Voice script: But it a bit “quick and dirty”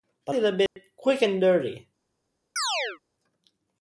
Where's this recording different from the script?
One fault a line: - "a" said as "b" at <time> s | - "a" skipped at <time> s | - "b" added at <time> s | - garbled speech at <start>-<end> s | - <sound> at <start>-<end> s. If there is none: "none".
- dropout at 0.7-0.8 s
- chirp at 2.6-3.0 s